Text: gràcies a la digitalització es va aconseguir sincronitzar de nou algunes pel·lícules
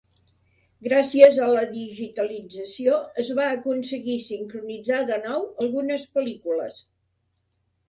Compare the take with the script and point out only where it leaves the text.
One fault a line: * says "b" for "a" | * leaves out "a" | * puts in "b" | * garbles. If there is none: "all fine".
all fine